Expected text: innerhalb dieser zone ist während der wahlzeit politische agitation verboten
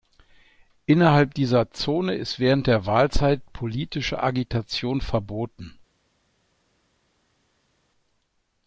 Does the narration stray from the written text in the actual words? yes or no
no